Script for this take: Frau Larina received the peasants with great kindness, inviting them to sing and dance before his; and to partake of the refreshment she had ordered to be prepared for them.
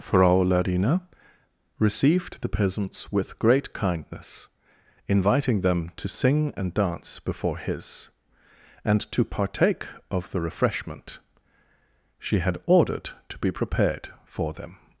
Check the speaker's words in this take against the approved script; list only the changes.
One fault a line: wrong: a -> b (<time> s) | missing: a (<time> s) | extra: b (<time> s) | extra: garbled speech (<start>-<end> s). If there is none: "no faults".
no faults